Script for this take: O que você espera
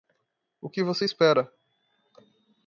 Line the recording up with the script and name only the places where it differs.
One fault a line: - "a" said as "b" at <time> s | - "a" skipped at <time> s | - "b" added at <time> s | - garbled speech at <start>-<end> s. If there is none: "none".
none